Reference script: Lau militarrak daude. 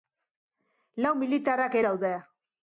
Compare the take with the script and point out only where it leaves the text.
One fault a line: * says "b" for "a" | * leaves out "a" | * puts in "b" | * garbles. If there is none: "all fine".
all fine